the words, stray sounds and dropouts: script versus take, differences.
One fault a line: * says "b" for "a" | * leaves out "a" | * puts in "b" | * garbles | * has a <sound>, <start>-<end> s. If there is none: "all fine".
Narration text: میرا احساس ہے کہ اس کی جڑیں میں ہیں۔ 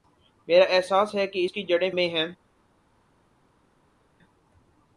all fine